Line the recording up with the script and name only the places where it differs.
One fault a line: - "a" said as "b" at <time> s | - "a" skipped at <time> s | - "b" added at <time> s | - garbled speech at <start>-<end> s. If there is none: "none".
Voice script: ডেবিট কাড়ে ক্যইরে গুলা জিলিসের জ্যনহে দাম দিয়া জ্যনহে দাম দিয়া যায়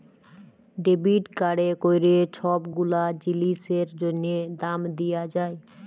- "ছব" added at 2.3 s
- "জ্যনহে দাম দিয়া" skipped at 5.2 s